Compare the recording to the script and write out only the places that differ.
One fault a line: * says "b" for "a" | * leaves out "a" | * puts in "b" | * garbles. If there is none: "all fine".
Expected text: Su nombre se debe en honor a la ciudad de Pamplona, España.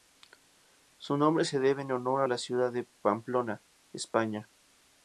all fine